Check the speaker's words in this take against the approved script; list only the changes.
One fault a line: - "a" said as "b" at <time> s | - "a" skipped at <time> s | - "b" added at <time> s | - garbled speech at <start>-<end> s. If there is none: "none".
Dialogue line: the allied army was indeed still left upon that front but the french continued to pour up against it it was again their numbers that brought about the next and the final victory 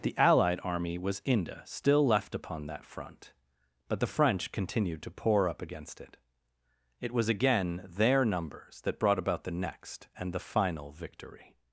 - "indeed" said as "inde" at 1.2 s